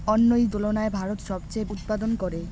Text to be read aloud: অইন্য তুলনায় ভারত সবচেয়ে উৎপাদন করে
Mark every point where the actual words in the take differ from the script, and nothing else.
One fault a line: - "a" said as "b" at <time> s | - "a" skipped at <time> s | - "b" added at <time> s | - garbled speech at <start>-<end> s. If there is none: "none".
none